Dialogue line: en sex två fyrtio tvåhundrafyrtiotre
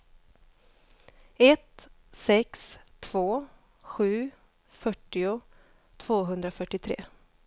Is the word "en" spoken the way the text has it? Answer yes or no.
no